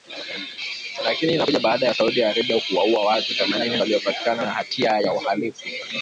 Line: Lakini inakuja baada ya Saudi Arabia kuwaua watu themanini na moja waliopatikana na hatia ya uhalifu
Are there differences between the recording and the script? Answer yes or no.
yes